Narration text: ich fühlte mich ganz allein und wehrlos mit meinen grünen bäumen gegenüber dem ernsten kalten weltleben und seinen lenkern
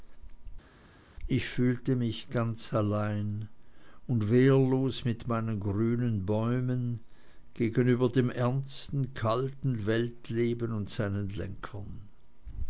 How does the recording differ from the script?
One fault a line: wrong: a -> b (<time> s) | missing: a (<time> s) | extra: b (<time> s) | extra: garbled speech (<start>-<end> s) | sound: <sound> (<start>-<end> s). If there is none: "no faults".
no faults